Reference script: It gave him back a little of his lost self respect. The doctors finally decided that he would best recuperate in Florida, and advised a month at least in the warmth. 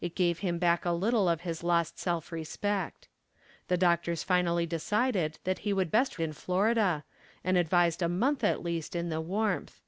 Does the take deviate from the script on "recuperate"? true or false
true